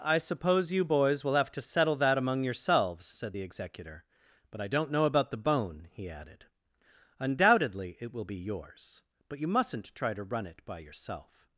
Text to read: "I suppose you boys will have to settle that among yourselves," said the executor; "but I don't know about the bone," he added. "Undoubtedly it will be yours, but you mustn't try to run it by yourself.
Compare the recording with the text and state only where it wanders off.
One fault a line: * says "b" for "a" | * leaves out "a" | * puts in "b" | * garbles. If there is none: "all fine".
all fine